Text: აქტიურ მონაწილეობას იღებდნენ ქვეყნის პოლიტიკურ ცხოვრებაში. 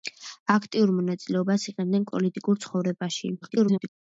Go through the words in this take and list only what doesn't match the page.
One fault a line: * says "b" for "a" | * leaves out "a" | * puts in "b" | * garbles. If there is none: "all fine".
* leaves out "ქვეყნის"
* garbles